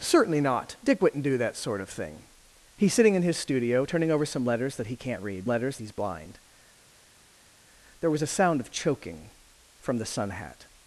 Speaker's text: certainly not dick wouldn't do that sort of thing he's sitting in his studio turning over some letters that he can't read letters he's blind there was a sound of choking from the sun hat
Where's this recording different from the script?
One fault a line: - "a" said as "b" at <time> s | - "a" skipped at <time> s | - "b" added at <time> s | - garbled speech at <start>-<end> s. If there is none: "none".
none